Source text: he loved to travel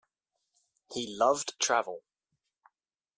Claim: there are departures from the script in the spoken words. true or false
true